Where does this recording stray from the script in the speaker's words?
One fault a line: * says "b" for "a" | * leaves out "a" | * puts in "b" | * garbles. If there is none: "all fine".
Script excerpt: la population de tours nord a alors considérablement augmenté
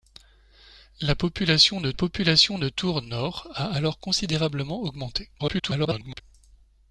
* puts in "population de"
* garbles